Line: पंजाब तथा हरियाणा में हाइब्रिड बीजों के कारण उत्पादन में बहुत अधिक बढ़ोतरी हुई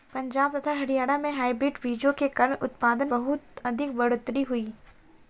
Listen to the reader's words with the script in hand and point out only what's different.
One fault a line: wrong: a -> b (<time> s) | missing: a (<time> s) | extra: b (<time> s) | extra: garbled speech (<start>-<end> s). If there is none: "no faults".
missing: में (3.1 s)